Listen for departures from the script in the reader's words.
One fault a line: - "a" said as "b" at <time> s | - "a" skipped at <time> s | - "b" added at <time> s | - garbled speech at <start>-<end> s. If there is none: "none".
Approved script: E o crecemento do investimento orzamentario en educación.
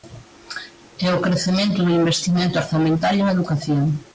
none